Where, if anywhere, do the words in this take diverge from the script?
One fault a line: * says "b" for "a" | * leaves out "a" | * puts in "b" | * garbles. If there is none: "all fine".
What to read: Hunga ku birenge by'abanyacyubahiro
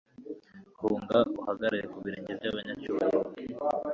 * puts in "uhagarare"